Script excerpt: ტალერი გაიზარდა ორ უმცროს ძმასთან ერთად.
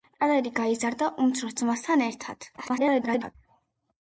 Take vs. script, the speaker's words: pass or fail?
fail